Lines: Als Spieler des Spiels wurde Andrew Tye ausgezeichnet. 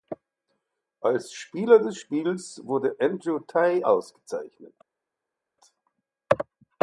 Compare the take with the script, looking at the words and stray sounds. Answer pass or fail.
pass